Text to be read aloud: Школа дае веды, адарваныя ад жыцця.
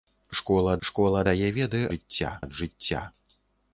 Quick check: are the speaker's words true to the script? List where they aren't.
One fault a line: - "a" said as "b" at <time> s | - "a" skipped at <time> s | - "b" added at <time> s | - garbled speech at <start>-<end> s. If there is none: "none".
- "школа" added at 0.9 s
- "адарваныя" said as "жыцця" at 1.9 s